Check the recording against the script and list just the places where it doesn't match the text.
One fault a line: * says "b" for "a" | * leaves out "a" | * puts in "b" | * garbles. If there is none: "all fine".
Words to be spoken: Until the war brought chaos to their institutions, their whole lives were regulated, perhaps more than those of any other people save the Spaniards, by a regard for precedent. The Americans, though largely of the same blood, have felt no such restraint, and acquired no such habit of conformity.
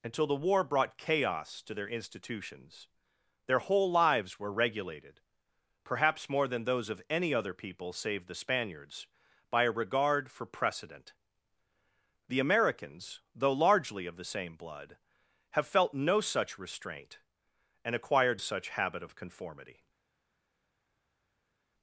* leaves out "no"